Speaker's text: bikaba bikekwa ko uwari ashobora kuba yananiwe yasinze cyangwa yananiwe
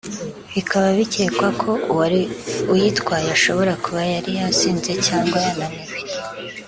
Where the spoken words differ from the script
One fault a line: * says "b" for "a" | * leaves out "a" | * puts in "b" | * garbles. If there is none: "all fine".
* puts in "uyitwaye"
* says "yari" for "yananiwe"